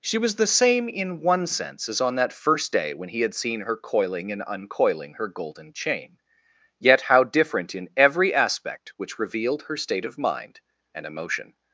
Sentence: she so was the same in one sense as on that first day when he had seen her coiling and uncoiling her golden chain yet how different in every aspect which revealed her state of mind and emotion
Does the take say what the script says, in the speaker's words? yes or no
no